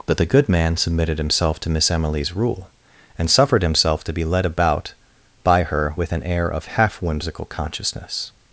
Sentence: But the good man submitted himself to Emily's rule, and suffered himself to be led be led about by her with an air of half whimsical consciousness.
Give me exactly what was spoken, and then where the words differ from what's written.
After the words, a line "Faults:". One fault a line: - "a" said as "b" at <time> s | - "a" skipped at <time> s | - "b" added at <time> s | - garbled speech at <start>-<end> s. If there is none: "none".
But the good man submitted himself to Miss Emily's rule, and suffered himself to be led about by her with an air of half whimsical consciousness.
Faults:
- "Miss" added at 1.7 s
- "be led" skipped at 4.5 s